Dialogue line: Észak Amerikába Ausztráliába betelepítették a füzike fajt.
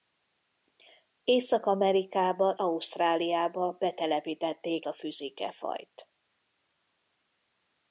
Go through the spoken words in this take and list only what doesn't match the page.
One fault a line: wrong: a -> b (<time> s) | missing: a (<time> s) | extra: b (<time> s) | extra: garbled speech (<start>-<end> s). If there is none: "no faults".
no faults